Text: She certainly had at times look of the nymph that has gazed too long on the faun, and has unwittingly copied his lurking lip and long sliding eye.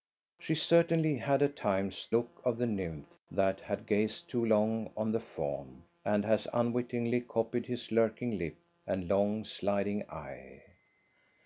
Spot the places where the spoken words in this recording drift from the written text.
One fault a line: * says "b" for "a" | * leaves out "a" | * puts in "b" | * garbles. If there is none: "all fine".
all fine